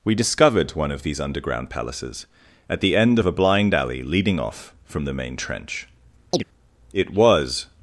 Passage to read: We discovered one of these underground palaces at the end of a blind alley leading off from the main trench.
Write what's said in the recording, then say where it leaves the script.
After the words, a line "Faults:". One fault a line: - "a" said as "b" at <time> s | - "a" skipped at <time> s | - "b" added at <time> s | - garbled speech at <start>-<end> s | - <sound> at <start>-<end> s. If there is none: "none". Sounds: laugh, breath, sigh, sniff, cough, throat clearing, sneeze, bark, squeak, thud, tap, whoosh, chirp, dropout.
We discovered one of these underground palaces at the end of a blind alley leading off from the main trench. It was
Faults:
- chirp at 6.3-6.4 s
- "It was" added at 6.9 s